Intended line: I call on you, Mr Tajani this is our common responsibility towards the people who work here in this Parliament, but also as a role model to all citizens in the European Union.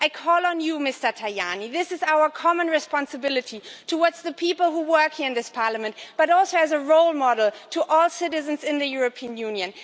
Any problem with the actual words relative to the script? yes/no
no